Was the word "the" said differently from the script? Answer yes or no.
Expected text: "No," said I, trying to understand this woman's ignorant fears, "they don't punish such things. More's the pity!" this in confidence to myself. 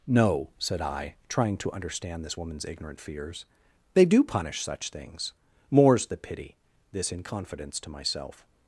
no